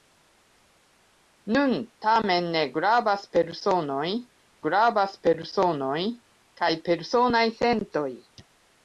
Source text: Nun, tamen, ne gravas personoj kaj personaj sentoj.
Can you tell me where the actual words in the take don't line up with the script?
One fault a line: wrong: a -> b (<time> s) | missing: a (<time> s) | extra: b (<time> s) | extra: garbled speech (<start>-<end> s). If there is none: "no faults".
extra: gravas personoj (4.7 s)